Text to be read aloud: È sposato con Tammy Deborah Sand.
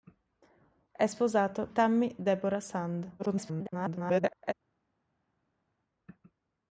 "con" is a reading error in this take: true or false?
true